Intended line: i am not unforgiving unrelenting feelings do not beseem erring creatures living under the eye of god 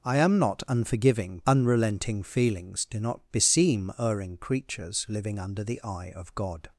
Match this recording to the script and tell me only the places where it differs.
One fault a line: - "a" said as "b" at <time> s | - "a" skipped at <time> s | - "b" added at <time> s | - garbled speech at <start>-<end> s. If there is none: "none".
none